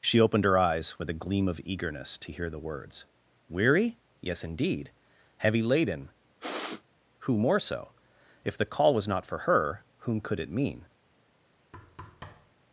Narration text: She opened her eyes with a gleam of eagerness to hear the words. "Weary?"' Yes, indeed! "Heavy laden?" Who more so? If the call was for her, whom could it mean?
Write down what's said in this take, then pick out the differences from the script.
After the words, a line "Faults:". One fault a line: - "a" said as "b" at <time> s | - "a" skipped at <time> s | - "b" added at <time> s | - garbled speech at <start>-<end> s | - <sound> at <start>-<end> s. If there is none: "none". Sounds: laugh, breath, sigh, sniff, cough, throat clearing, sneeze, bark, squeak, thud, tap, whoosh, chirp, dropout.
She opened her eyes with a gleam of eagerness to hear the words. "Weary?"' Yes, indeed! "Heavy laden?" Who more so? If the call was not for her, whom could it mean?
Faults:
- sniff at 6.4-6.8 s
- "not" added at 9.1 s
- thud at 11.7-12.6 s